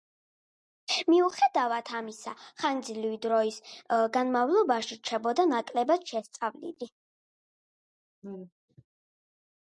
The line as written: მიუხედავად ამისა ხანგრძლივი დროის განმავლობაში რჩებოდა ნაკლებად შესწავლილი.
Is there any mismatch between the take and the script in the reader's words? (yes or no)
no